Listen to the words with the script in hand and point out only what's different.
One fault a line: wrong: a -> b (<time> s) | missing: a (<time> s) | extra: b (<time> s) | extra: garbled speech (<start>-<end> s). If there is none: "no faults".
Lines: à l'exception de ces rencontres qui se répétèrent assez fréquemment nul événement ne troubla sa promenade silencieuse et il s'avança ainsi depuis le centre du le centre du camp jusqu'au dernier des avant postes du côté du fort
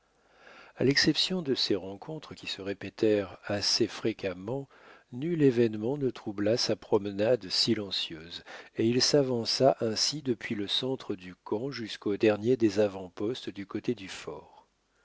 missing: le centre du (11.3 s)